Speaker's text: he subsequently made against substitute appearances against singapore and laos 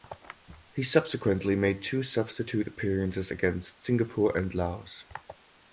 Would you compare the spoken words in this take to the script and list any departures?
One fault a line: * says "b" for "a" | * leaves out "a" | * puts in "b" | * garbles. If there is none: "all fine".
* says "two" for "against"